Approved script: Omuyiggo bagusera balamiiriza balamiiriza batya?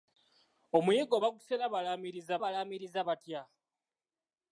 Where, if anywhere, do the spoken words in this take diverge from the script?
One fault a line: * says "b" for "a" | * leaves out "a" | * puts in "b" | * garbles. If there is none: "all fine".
all fine